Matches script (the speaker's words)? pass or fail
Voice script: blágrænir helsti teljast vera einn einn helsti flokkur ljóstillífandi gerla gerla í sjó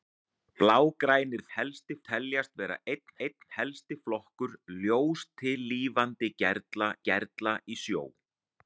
pass